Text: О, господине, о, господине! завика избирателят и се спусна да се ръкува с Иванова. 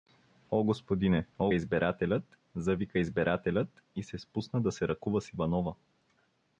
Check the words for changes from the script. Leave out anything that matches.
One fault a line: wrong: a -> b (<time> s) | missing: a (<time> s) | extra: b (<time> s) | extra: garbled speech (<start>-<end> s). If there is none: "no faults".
wrong: господине -> избирателят (1.5 s)